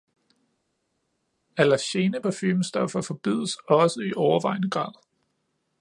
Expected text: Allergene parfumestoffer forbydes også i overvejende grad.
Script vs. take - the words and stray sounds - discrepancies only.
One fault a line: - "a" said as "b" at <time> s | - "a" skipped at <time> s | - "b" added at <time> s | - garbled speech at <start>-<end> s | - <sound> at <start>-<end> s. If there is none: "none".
none